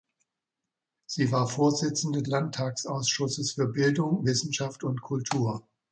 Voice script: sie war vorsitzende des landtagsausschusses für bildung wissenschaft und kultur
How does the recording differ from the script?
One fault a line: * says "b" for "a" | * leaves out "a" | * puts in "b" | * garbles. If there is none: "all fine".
* leaves out "des"